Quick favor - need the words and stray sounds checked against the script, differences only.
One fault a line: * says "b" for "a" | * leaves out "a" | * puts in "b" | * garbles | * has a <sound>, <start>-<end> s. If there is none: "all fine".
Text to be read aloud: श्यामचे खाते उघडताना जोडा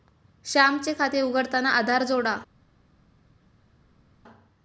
* puts in "आधार"